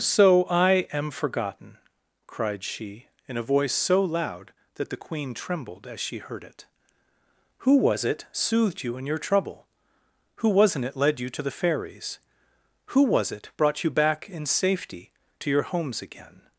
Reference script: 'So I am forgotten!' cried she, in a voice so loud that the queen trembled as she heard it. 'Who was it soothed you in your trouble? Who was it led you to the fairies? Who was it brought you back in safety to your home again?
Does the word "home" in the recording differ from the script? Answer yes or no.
yes